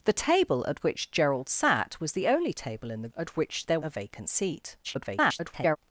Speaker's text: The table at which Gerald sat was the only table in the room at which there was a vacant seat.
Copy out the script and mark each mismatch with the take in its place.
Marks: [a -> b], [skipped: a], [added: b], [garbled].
The table at which Gerald sat was the only table in the [skipped: room] at which there [skipped: was] a vacant seat. [garbled]